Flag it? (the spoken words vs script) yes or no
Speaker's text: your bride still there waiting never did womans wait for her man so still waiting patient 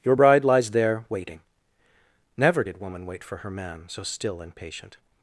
yes